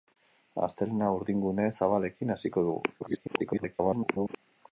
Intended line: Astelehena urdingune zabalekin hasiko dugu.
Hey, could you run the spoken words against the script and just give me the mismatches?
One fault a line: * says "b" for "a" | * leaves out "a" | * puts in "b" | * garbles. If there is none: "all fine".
* garbles